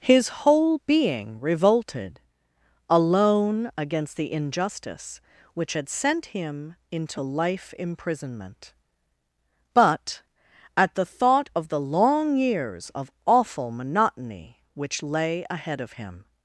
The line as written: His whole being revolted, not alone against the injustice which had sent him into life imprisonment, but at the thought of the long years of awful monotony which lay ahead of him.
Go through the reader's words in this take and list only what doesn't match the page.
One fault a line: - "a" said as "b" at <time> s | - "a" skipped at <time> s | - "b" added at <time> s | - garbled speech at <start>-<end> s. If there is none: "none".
- "not" skipped at 2.2 s